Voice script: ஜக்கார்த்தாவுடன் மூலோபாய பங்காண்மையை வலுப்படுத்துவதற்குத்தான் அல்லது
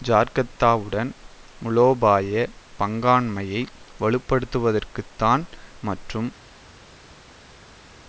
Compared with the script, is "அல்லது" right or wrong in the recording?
wrong